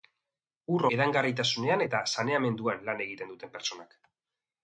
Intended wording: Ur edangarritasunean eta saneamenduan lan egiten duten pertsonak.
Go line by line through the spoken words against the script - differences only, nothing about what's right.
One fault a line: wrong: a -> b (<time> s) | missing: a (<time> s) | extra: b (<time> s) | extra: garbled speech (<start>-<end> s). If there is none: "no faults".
no faults